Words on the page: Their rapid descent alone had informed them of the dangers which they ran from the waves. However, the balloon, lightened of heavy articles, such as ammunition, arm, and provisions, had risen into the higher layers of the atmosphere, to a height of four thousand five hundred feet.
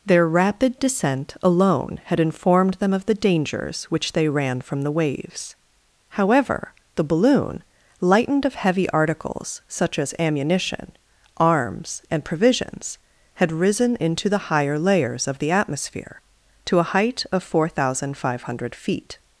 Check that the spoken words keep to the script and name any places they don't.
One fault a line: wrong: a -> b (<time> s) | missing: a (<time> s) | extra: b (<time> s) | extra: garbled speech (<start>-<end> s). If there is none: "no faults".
wrong: arm -> arms (11.4 s)